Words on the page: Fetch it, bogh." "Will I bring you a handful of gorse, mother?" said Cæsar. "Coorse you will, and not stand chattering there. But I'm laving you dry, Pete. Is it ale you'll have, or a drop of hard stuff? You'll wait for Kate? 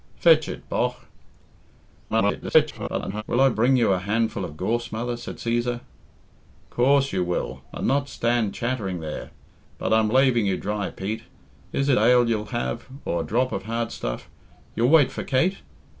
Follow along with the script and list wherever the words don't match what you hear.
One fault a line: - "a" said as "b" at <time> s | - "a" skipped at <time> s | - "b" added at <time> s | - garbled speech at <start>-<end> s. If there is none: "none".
- garbled speech at 2.1-3.2 s